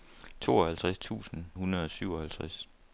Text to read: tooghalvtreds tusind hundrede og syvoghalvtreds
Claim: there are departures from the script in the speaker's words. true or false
false